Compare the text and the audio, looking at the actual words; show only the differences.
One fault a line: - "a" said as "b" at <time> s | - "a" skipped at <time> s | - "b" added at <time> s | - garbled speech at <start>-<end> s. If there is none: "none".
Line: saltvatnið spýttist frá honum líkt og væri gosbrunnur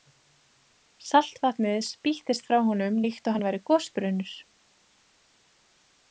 - "hann" added at 3.3 s